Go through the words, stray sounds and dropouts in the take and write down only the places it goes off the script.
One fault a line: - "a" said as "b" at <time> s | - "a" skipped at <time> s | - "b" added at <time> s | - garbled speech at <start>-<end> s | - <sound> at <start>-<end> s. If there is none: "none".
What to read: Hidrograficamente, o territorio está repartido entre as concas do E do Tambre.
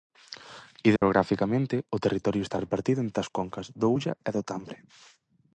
- dropout at 1.0-1.0 s
- "Ulla" added at 4.0 s